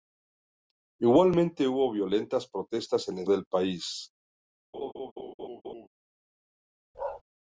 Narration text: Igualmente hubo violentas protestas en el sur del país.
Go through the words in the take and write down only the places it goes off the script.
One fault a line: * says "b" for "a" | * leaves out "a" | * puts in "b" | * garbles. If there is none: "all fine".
* leaves out "sur"